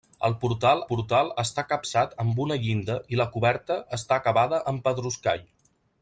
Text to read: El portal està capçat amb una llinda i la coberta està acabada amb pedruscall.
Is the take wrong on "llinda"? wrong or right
right